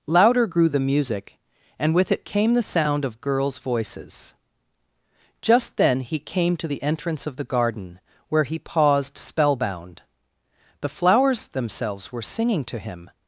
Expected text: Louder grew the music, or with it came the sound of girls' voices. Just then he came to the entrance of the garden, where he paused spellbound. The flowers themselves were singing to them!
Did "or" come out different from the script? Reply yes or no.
yes